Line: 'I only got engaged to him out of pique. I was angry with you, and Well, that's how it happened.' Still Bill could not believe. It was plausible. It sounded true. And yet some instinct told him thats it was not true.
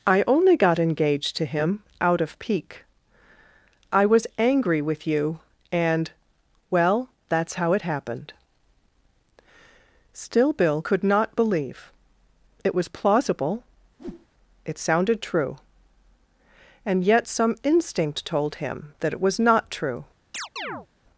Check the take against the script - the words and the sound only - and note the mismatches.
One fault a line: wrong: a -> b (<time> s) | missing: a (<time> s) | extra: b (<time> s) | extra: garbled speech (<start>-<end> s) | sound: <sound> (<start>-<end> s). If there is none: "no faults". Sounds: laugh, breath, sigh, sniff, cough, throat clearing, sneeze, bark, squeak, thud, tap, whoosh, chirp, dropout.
sound: whoosh (14.0-14.3 s)
wrong: thats -> that (19.0 s)
sound: chirp (20.3-20.9 s)